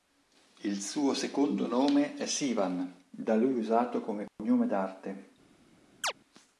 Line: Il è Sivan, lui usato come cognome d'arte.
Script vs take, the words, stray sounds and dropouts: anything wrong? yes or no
yes